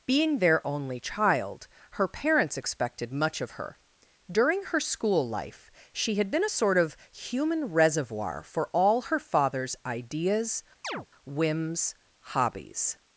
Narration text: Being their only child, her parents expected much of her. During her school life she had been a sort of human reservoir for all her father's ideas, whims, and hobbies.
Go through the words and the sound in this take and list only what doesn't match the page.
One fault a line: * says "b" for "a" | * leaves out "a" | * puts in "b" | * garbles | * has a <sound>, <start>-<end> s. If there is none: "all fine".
* has a chirp, 10.8-11.1 s
* leaves out "and"